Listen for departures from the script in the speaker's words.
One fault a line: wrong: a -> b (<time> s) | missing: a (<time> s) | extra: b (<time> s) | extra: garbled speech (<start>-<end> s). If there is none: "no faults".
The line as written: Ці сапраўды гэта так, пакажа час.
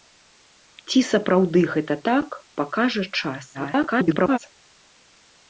extra: garbled speech (3.5-4.4 s)